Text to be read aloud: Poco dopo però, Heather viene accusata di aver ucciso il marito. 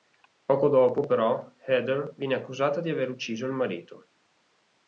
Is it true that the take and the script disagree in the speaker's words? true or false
false